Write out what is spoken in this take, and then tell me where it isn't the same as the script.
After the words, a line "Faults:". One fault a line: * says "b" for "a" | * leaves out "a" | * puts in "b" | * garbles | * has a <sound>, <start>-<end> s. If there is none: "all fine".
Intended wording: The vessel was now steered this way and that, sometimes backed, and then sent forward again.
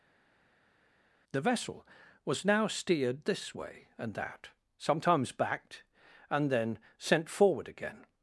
The vessel was now steered this way and that, sometimes backed, and then sent forward again.
Faults:
all fine